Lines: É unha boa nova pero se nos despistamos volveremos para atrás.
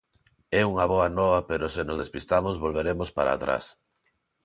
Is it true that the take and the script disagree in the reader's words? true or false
false